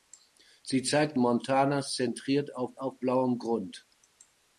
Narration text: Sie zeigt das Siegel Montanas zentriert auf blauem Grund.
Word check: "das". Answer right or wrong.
wrong